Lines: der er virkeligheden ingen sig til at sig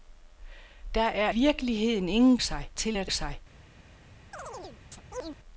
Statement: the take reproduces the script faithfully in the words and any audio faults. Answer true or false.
false